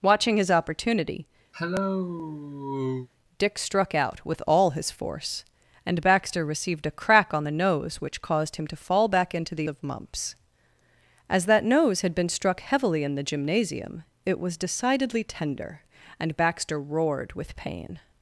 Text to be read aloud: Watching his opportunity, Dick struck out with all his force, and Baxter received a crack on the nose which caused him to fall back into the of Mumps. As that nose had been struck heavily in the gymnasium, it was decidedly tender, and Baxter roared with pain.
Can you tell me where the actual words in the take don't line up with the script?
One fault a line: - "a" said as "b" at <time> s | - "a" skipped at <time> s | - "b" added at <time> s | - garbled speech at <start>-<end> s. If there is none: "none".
none